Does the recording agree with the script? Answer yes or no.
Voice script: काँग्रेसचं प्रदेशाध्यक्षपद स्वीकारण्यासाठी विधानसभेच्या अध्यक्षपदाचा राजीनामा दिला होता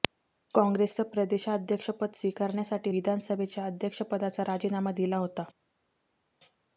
yes